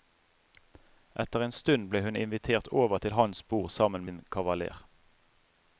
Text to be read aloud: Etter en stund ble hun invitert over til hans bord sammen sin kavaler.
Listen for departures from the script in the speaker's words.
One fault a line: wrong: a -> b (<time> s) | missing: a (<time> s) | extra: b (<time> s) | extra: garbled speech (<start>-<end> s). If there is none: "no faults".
no faults